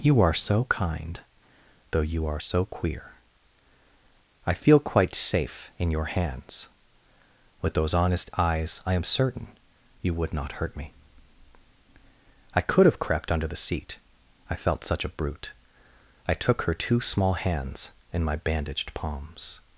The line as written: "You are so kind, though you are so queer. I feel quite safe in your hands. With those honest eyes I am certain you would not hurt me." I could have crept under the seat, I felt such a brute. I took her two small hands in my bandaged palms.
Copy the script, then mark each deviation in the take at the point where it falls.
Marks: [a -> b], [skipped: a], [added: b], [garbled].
"You are so kind, though you are so queer. I feel quite safe in your hands. With those honest eyes I am certain you would not hurt me." I could have crept under the seat, I felt such a brute. I took her two small hands in my bandaged palms.